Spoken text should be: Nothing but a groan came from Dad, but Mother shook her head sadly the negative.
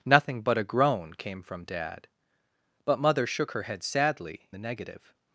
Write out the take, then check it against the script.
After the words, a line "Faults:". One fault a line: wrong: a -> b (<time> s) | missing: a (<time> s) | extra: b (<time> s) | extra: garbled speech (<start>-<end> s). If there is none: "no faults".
Nothing but a groan came from Dad, but Mother shook her head sadly the negative.
Faults:
no faults